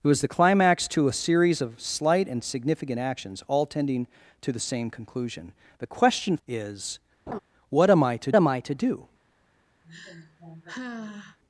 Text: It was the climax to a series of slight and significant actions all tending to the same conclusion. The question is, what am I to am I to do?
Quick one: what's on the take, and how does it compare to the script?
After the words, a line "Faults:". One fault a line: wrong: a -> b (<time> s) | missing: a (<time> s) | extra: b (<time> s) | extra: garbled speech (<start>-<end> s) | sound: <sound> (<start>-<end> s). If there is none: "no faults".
It was the climax to a series of slight and significant actions all tending to the same conclusion. The question is, what am I to am I to do?
Faults:
sound: laugh (7.3-7.4 s)
sound: sigh (9.8-11.4 s)